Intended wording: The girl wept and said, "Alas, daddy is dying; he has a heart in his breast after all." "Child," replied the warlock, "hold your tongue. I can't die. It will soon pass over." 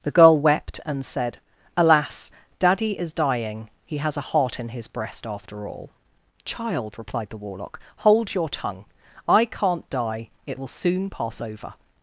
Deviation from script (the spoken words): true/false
false